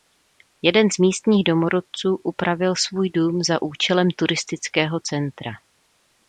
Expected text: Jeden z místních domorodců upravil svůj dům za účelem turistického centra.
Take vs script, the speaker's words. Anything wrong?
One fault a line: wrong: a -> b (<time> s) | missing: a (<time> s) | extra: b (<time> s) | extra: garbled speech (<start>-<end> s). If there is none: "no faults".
no faults